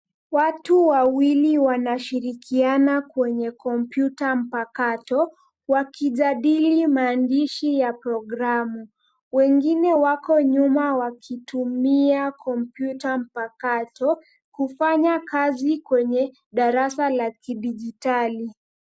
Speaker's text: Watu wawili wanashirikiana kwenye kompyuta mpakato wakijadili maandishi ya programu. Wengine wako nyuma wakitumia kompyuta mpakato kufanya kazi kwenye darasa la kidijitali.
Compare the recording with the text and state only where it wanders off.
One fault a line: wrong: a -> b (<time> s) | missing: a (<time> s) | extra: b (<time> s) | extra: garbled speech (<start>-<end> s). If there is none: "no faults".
no faults